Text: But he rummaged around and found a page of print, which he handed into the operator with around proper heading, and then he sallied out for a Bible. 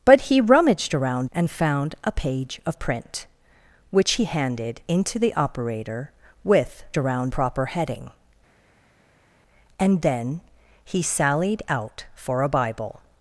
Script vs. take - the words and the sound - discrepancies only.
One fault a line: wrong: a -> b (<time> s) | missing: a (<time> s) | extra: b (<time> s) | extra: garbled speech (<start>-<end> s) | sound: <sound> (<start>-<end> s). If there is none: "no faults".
no faults